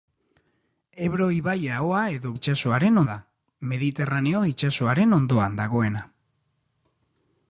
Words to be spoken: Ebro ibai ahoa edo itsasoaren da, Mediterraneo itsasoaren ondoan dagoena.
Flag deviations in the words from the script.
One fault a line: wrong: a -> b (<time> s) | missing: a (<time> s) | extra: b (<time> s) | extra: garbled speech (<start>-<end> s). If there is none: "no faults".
no faults